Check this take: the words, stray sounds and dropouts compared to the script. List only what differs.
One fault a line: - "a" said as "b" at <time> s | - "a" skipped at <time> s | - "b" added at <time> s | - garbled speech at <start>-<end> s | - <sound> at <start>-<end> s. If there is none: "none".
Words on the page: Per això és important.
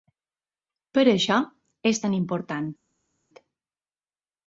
- "tan" added at 2.0 s